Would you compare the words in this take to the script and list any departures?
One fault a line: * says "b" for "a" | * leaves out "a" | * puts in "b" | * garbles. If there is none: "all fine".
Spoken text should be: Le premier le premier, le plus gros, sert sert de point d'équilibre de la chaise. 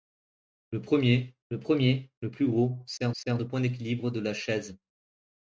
all fine